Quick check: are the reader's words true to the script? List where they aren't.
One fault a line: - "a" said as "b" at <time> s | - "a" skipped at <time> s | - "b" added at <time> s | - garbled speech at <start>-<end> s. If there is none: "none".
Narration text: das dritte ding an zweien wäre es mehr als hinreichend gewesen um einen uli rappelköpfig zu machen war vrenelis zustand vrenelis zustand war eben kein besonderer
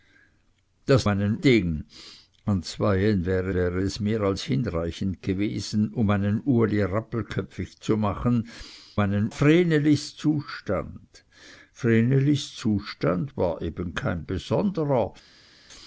- "dritte" said as "einen" at 1.1 s
- "wäre" added at 3.5 s
- "war" said as "einen" at 9.0 s